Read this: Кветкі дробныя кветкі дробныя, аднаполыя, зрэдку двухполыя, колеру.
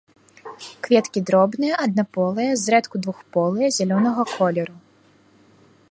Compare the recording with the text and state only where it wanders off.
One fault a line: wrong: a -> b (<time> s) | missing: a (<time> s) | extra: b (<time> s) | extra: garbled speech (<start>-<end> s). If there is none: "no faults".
missing: кветкі дробныя (1.8 s)
extra: зялёнага (3.8 s)